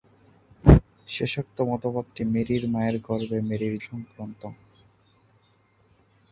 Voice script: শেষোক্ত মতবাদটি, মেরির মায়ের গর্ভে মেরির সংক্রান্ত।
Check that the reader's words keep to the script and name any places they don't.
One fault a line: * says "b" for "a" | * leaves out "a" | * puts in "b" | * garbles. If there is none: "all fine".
all fine